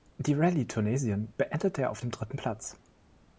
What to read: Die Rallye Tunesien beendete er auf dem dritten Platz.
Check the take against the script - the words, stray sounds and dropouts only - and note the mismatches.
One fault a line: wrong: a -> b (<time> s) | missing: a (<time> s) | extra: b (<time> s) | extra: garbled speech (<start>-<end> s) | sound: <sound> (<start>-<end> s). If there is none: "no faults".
no faults